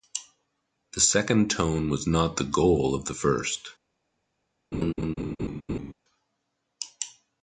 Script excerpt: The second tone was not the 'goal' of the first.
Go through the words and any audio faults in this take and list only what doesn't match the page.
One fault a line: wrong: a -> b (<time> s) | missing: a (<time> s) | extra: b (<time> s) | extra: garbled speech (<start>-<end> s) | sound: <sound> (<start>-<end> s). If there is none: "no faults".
sound: laugh (4.7-5.9 s)